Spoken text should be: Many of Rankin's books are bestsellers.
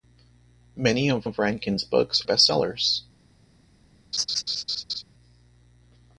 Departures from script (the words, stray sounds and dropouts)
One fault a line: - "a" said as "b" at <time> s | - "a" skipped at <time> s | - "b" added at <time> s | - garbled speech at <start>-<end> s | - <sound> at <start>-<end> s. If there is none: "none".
- "of" added at 1.2 s
- "are" skipped at 2.2 s
- laugh at 4.1-5.0 s